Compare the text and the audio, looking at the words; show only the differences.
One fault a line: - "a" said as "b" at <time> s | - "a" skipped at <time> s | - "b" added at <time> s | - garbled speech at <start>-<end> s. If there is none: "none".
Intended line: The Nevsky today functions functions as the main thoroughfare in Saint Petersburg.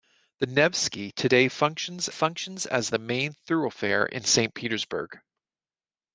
none